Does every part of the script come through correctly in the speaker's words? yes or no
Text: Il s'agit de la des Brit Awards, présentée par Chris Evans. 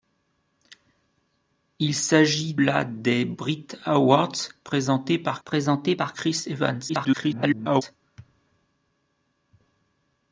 no